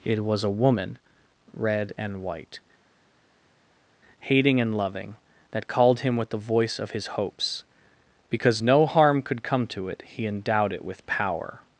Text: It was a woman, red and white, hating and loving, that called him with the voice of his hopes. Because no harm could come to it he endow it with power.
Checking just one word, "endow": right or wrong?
wrong